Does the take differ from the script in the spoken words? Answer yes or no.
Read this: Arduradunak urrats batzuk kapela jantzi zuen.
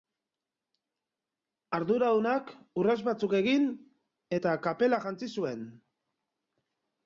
yes